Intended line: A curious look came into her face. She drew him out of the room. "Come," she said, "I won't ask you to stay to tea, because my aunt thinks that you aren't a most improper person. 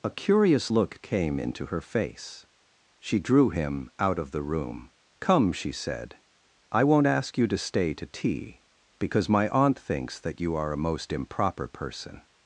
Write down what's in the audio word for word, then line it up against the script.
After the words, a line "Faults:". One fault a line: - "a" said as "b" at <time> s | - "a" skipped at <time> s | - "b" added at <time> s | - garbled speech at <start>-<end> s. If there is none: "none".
A curious look came into her face. She drew him out of the room. "Come," she said, "I won't ask you to stay to tea, because my aunt thinks that you are a most improper person.
Faults:
- "aren't" said as "are" at 10.5 s